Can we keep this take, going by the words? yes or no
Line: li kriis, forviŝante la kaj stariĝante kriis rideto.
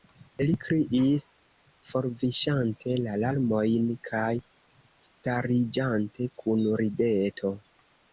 no